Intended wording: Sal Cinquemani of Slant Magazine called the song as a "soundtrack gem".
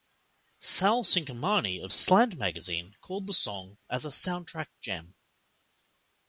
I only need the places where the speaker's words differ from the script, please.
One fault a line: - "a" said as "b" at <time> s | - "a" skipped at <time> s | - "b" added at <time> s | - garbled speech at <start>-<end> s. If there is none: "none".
none